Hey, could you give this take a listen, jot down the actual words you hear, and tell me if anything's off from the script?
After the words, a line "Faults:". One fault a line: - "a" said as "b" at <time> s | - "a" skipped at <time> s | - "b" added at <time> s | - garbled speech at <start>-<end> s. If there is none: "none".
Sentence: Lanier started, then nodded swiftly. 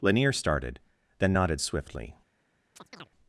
Lanier started, then nodded swiftly.
Faults:
none